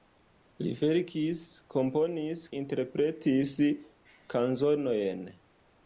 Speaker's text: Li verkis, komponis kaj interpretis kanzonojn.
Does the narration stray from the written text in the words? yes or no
yes